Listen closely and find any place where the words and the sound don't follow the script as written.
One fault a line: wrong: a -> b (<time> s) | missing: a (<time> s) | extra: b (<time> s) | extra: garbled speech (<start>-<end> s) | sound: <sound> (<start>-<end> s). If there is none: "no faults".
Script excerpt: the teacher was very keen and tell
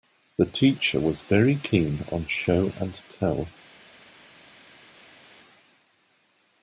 extra: on show (2.1 s)